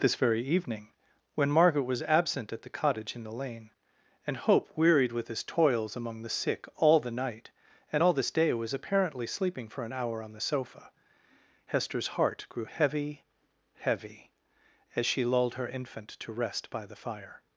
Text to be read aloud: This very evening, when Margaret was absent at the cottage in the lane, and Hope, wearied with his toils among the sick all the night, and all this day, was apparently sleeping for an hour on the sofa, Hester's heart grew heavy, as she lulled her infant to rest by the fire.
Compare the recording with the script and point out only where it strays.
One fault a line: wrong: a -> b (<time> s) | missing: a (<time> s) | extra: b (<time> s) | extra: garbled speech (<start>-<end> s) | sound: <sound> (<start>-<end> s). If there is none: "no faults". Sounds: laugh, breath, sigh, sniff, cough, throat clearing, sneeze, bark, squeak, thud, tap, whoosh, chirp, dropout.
extra: heavy (13.8 s)